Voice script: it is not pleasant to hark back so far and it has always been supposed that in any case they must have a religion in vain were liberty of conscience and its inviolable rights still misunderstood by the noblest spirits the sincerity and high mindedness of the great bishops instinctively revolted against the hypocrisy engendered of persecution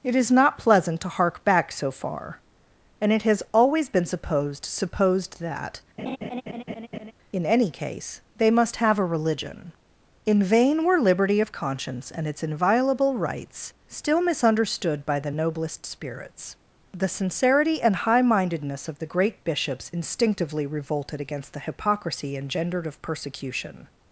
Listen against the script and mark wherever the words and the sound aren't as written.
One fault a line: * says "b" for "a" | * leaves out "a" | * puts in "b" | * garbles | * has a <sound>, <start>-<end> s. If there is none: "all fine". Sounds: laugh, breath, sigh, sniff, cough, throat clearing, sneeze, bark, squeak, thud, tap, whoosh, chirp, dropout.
* puts in "supposed"
* has a laugh, 6.0-7.1 s